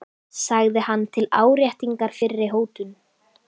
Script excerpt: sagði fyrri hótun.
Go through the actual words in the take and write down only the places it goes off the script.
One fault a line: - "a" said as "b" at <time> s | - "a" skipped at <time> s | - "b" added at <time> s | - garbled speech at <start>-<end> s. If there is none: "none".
- "hann til áréttingar" added at 0.9 s